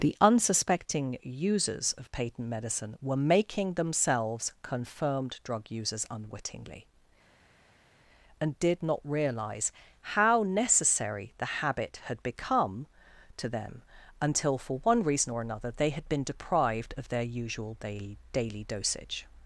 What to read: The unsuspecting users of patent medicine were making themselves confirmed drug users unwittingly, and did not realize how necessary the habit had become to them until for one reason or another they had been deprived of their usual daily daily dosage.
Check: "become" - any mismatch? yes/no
no